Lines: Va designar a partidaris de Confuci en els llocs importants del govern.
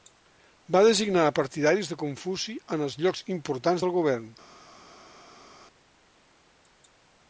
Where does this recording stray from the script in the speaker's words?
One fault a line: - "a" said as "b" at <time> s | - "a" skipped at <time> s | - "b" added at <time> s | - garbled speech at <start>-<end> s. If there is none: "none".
none